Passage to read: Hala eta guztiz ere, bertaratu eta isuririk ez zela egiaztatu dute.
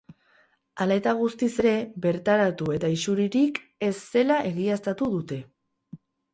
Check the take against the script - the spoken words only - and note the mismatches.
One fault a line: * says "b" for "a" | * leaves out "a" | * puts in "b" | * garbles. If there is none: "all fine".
all fine